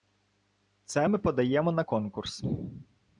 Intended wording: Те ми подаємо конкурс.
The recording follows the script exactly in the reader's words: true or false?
false